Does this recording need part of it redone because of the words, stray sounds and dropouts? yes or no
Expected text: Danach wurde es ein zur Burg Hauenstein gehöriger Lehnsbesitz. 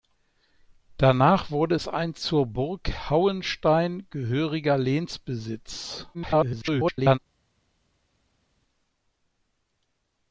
yes